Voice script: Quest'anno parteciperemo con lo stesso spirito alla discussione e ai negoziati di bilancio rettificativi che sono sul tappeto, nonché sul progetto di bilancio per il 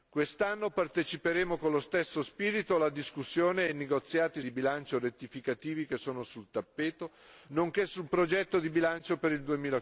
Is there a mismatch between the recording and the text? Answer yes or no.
no